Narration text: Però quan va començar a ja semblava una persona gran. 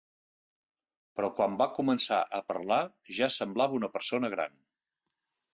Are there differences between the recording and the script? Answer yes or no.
yes